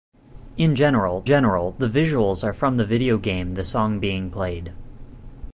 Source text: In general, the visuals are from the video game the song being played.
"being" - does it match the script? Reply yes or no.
yes